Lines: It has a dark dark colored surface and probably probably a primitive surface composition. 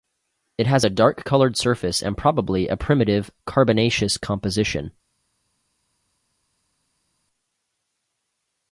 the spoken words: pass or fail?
fail